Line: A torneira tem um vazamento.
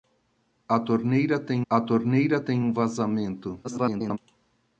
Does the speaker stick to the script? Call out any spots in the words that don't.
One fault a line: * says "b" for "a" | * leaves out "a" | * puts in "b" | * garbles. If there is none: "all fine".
* puts in "a torneira tem"
* garbles